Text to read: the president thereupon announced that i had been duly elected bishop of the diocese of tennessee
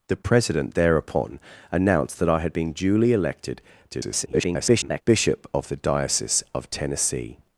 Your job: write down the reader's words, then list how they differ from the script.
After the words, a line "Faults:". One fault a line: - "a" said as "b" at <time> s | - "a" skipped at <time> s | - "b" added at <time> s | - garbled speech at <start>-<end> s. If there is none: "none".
the president thereupon announced that i had been duly elected [garbled] bishop of the diocese of tennessee
Faults:
- garbled speech at 3.9-5.0 s